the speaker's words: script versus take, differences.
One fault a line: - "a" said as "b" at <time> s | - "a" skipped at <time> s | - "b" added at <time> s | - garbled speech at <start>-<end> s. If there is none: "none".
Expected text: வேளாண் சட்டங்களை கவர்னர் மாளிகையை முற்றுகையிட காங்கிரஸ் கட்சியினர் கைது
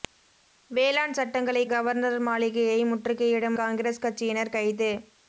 none